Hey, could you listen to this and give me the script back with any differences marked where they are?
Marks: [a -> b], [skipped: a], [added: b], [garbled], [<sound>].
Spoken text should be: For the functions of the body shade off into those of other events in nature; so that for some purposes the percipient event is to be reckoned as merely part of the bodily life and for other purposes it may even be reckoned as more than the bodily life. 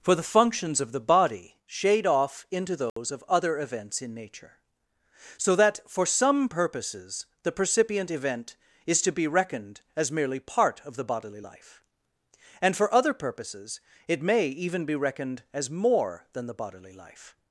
For the functions of the body shade off into those [dropout] of other events in nature; so that for some purposes the percipient event is to be reckoned as merely part of the bodily life and for other purposes it may even be reckoned as more than the bodily life.